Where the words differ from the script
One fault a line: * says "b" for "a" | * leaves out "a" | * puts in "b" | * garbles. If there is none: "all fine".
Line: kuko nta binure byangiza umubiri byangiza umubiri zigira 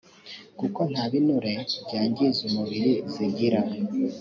* leaves out "byangiza umubiri"